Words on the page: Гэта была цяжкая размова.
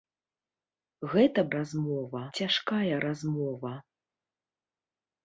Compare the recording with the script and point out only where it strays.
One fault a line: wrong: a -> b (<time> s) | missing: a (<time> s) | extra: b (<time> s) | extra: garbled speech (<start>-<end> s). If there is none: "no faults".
wrong: была -> размова (1.6 s)